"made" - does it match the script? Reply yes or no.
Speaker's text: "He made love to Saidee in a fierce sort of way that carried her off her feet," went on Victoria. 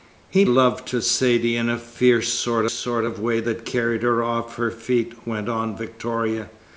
no